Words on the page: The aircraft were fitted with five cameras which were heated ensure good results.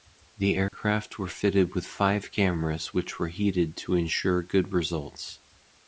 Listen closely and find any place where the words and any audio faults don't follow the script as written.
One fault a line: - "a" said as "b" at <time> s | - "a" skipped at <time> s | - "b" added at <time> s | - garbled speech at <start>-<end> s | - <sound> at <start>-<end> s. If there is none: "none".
- dropout at 0.7-0.7 s
- "to" added at 3.8 s